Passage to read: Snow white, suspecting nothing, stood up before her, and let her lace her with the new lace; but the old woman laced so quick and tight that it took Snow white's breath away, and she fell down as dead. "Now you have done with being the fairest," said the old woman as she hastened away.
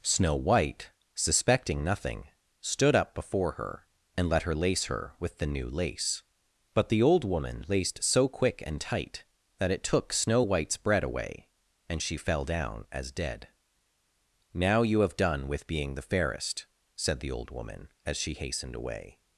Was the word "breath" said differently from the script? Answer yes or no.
yes